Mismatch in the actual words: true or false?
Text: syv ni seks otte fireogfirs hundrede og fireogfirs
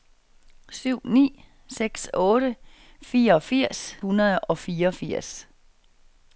false